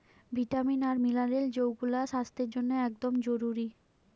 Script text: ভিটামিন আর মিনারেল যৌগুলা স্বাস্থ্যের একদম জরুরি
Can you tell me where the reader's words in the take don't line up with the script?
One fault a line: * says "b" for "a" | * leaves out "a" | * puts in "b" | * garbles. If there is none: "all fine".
* puts in "জন্যে"